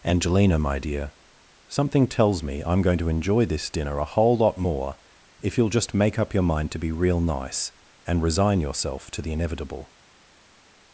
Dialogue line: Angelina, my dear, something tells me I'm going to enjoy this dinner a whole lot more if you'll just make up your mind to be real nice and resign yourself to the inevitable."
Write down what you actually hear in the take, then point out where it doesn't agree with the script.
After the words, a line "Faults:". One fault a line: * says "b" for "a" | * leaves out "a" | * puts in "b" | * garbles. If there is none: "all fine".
Angelina, my dear, something tells me I'm going to enjoy this dinner a whole lot more if you'll just make up your mind to be real nice and resign yourself to the inevitable."
Faults:
all fine